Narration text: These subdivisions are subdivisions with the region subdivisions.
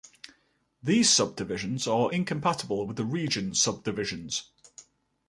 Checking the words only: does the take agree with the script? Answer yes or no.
no